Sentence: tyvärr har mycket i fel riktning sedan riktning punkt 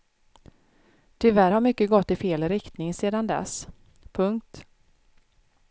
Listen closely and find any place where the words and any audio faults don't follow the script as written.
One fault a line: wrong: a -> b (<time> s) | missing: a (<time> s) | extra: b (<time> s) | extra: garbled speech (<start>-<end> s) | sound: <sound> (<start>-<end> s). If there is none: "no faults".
extra: gått (1.9 s)
wrong: riktning -> dess (3.3 s)